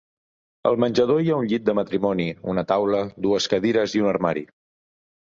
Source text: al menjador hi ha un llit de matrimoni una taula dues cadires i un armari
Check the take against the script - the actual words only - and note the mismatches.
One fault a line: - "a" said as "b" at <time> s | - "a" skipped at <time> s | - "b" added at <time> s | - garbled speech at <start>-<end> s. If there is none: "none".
none